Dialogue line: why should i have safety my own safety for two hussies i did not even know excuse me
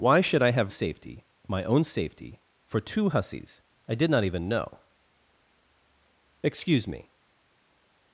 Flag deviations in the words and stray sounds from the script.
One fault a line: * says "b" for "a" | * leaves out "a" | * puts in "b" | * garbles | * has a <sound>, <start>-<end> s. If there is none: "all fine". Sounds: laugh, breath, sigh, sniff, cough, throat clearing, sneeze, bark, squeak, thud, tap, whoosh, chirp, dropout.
all fine